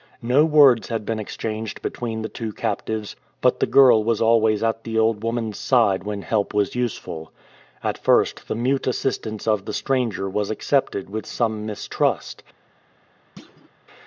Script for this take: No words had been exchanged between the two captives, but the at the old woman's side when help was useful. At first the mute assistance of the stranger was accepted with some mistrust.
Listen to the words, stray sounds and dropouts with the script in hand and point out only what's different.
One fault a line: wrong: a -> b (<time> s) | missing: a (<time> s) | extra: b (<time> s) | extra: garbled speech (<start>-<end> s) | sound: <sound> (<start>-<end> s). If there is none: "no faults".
extra: girl was always (3.7 s)
sound: thud (13.4-13.7 s)